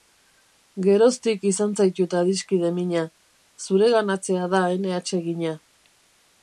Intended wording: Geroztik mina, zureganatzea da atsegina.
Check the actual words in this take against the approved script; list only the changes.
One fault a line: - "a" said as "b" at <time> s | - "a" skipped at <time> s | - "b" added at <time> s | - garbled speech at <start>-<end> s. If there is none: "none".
- "izan zaitut adiskide" added at 1.5 s
- "ene" added at 4.8 s